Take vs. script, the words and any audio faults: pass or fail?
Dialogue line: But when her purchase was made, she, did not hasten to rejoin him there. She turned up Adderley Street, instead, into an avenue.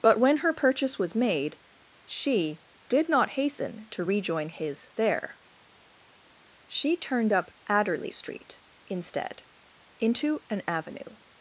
fail